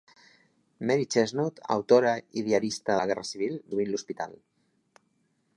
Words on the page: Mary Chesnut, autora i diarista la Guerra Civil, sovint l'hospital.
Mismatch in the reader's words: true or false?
false